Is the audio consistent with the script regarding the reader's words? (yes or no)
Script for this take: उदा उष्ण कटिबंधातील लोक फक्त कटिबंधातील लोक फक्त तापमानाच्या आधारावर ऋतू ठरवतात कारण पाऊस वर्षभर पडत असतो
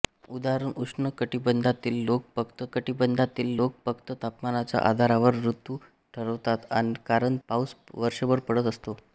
yes